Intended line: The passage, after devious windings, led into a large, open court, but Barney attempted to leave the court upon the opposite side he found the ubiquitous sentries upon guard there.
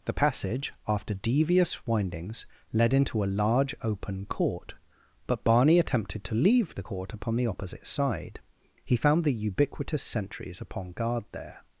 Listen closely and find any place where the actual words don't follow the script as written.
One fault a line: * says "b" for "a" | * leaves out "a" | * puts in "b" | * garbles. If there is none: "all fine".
all fine